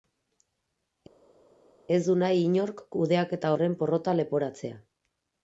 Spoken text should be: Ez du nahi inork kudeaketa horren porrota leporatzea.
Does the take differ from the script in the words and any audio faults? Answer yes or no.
no